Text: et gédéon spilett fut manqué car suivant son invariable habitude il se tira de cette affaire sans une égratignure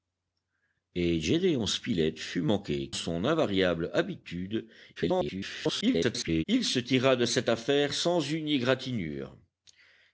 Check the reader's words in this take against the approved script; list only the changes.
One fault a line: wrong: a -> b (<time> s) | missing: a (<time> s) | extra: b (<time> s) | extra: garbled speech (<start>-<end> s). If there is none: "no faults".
missing: car suivant (2.9 s)
extra: garbled speech (5.0-6.4 s)